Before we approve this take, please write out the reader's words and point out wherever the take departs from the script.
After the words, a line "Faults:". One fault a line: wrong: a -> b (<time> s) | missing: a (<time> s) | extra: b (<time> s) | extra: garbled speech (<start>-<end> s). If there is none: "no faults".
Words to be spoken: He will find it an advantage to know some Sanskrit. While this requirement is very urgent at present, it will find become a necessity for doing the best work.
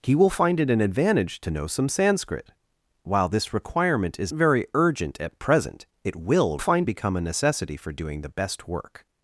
He will find it an advantage to know some Sanskrit. While this requirement is very urgent at present, it will find become a necessity for doing the best work.
Faults:
no faults